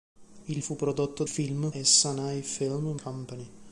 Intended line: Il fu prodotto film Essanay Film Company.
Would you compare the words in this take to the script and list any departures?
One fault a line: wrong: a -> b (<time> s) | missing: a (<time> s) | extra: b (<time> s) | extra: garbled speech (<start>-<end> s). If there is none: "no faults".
no faults